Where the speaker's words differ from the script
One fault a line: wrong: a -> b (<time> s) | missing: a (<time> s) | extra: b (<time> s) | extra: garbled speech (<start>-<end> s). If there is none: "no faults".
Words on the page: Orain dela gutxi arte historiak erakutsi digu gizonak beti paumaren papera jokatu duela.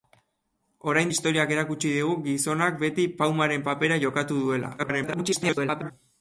missing: dela gutxi arte (1.1 s)
extra: garbled speech (4.8-5.9 s)